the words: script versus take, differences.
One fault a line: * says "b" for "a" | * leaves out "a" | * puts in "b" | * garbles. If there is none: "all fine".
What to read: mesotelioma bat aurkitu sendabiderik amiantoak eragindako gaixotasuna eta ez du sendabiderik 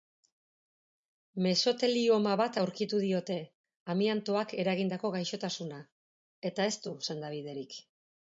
* says "diote" for "sendabiderik"